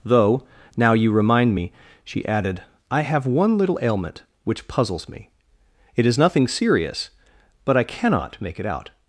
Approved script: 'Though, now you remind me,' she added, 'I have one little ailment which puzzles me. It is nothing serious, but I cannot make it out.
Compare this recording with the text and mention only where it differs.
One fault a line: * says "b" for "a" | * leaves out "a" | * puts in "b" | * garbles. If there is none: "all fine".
all fine